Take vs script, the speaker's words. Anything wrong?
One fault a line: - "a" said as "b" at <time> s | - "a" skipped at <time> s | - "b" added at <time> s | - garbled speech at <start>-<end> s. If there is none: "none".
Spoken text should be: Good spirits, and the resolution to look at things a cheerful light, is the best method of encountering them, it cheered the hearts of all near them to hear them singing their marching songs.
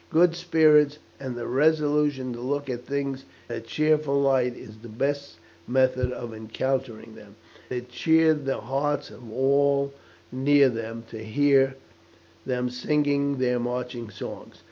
none